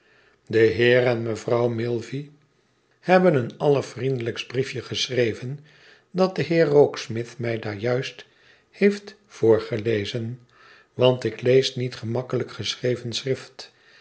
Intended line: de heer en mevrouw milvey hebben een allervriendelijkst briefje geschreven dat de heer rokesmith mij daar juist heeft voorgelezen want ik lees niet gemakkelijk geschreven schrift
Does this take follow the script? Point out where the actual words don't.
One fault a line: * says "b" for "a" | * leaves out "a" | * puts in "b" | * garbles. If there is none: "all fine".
all fine